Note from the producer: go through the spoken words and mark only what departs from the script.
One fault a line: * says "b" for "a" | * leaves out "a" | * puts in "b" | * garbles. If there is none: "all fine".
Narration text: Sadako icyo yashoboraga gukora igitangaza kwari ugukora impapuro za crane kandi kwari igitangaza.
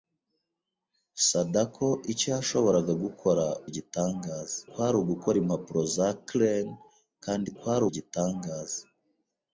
all fine